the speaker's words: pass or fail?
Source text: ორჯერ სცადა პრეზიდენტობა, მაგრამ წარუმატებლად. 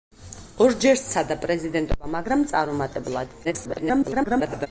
fail